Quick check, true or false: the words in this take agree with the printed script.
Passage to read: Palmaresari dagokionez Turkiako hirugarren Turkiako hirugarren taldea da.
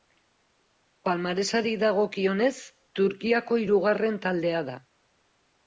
false